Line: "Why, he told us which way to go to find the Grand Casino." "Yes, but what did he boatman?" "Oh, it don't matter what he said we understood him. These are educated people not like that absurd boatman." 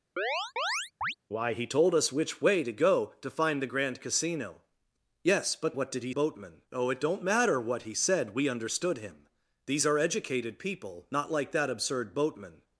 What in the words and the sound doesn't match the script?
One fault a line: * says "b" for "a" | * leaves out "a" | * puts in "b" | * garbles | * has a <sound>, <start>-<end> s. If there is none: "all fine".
* has a chirp, 0.2-1.1 s